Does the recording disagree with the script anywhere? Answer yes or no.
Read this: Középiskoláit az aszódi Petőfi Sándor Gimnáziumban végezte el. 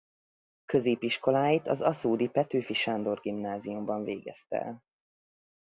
no